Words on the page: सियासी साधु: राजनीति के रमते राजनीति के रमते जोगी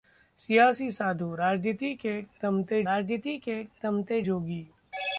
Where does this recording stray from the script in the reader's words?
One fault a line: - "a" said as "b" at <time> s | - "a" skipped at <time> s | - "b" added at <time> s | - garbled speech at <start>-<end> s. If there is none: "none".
none